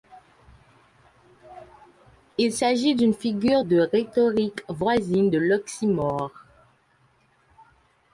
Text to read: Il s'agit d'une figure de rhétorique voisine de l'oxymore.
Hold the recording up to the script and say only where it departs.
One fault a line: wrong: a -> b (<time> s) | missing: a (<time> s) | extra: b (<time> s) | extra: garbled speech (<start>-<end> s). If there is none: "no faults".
no faults